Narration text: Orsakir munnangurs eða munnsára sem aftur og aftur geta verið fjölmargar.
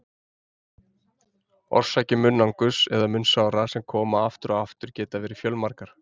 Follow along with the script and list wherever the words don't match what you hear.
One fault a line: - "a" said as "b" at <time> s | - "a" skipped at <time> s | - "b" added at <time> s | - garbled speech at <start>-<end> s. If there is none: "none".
- "koma" added at 4.0 s